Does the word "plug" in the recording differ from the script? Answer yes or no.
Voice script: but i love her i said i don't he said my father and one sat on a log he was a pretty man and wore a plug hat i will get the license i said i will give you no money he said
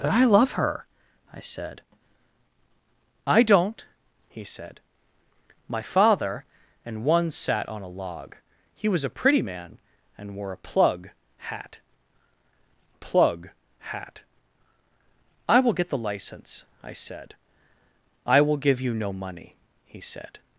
no